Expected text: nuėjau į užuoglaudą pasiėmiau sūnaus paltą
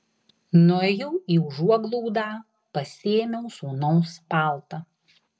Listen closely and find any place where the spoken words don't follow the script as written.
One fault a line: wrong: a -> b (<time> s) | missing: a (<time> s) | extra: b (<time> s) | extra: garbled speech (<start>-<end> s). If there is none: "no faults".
no faults